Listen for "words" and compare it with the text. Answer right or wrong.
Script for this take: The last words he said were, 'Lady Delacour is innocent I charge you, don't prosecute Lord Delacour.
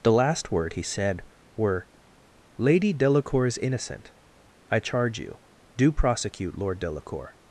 wrong